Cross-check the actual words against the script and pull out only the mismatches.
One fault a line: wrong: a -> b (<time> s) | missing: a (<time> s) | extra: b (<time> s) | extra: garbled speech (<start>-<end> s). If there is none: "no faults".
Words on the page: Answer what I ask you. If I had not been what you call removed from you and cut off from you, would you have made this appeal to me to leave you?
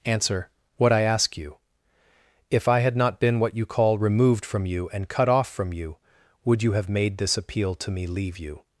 missing: to (8.1 s)